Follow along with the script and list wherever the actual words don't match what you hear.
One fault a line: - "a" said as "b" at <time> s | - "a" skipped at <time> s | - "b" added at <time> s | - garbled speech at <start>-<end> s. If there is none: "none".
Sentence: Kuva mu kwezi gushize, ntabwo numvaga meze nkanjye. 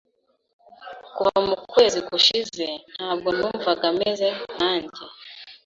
none